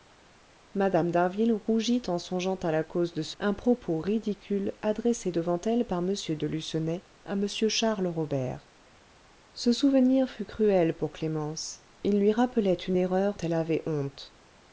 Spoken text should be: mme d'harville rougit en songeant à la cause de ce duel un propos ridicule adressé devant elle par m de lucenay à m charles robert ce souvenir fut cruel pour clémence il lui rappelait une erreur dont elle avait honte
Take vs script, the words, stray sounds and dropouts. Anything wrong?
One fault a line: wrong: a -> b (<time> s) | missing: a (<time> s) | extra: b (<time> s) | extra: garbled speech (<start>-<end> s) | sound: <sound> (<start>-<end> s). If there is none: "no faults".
missing: duel (3.4 s)
missing: dont (13.4 s)